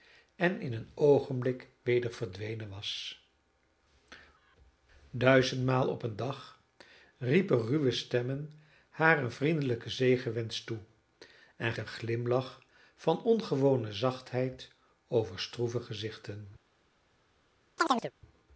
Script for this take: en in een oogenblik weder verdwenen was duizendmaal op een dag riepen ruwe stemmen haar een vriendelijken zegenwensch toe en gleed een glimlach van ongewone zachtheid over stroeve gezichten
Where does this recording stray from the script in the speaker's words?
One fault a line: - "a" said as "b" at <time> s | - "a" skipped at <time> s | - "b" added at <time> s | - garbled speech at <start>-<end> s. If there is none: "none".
- "gleed" skipped at 11.7 s